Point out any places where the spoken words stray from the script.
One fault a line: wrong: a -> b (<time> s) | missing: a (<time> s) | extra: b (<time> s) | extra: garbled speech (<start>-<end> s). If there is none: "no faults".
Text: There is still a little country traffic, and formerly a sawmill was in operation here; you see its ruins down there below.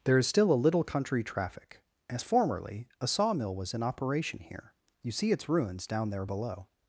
wrong: and -> as (2.1 s)